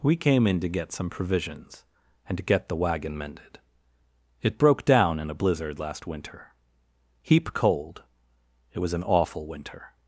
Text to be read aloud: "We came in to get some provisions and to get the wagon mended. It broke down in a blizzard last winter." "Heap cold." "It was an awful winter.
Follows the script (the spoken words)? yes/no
yes